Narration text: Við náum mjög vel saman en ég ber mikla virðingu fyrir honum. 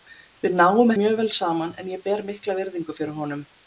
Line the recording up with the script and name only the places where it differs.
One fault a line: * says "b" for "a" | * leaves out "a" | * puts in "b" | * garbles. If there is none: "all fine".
all fine